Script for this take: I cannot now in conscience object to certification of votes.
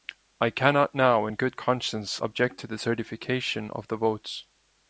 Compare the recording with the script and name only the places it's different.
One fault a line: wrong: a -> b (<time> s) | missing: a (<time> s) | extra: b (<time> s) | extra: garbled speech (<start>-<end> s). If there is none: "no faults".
extra: good (1.3 s)
extra: the (2.7 s)
extra: the (3.9 s)